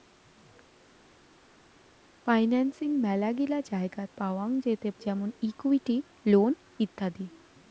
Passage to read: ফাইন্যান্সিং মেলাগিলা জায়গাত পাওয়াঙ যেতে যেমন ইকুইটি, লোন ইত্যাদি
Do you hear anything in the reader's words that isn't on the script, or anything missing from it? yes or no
no